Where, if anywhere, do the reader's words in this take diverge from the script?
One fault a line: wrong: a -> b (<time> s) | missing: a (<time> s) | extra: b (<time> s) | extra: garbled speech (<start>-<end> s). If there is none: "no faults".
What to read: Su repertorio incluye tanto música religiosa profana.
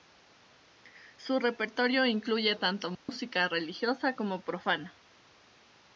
extra: como (4.2 s)